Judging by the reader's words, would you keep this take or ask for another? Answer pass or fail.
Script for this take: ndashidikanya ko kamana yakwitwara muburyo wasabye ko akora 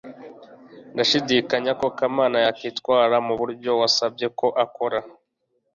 pass